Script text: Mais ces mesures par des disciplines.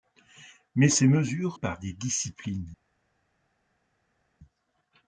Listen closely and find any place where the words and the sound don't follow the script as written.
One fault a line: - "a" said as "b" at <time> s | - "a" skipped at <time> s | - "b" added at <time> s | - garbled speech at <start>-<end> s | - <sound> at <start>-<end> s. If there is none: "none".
none